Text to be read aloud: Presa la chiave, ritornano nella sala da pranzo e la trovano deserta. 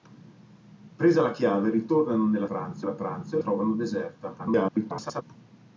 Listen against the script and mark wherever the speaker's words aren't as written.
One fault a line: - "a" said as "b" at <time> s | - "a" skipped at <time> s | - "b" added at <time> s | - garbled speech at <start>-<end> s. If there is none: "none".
- "sala" said as "pranzo" at 2.4 s
- "la" skipped at 3.4 s
- garbled speech at 4.4-5.2 s